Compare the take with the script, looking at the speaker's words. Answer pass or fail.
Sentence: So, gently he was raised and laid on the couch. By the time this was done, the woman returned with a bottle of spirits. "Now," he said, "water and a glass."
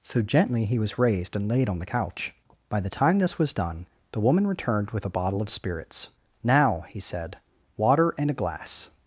pass